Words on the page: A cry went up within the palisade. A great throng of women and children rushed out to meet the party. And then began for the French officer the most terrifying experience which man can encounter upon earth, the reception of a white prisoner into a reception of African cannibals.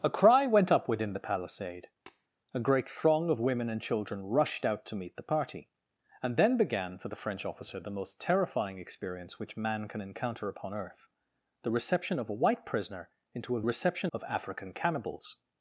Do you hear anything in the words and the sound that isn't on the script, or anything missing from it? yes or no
yes